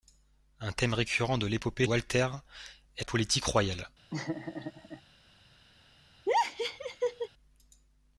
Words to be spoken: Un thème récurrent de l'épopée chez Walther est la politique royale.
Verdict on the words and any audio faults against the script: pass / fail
fail